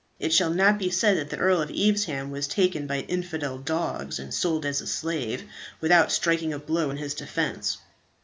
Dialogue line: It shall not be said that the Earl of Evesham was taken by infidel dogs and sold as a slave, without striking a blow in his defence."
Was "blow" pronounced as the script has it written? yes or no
yes